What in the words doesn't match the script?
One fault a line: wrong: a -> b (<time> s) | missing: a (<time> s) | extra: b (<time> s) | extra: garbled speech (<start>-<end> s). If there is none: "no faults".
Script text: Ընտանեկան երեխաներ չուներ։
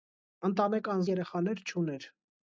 no faults